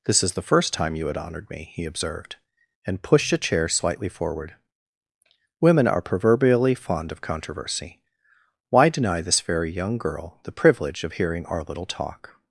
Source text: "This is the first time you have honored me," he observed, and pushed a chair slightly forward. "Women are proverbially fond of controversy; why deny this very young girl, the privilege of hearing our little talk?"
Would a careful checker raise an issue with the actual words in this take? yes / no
yes